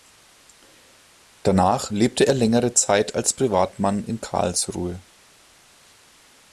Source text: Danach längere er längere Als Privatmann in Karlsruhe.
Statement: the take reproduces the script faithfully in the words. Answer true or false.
false